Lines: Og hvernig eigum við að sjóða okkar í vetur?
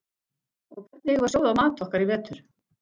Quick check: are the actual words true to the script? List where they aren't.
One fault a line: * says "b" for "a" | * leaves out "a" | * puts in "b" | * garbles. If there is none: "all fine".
* puts in "mat"